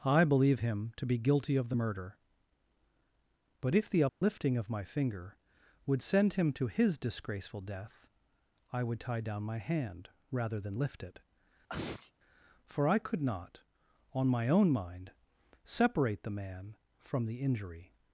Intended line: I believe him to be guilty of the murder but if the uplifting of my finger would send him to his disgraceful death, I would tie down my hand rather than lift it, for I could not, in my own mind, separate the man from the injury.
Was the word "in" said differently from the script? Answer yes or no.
yes